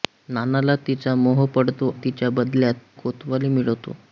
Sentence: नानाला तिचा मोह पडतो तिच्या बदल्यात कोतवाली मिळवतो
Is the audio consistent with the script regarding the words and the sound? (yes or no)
yes